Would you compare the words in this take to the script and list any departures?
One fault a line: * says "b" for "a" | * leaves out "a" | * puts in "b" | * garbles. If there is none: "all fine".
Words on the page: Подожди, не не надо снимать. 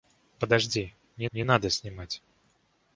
all fine